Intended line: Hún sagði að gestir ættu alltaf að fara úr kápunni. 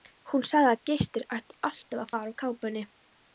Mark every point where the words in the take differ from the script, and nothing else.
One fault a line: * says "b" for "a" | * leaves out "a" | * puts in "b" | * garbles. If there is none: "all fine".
all fine